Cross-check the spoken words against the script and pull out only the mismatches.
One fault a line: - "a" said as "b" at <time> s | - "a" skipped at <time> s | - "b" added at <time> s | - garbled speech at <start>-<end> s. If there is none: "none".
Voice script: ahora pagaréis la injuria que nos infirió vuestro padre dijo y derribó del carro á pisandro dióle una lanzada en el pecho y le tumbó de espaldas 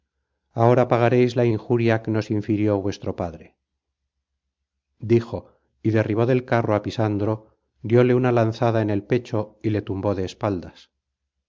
none